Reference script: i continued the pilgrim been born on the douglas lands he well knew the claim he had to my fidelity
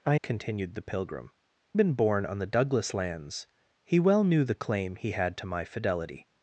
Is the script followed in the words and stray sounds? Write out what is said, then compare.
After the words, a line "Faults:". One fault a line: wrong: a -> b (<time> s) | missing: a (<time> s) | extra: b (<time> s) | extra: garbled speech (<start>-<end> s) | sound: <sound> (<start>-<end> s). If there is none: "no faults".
i continued the pilgrim been born on the douglas lands he well knew the claim he had to my fidelity
Faults:
no faults